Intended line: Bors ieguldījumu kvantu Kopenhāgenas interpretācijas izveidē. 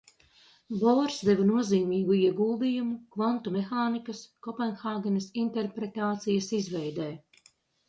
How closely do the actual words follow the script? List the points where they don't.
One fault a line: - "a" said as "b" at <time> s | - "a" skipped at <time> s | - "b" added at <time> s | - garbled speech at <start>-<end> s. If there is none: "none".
- "deva nozīmīgu" added at 1.3 s
- "mehānikas" added at 3.6 s